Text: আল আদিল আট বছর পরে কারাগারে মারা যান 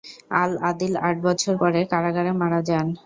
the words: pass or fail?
pass